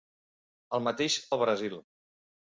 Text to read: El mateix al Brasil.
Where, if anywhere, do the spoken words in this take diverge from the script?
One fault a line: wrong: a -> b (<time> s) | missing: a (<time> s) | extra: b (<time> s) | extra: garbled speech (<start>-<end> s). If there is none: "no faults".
no faults